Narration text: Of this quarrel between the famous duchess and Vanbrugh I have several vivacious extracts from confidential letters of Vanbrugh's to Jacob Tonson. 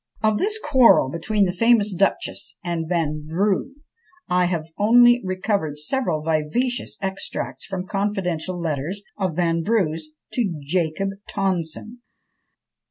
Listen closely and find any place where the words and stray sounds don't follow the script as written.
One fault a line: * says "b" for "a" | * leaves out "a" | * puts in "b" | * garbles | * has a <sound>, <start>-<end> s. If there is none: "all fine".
* puts in "only recovered"